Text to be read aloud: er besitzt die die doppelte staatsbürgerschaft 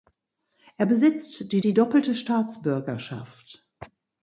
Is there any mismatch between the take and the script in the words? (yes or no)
no